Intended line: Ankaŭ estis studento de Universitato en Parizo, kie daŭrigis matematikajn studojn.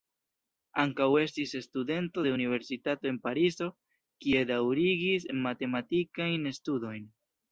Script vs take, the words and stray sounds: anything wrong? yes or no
no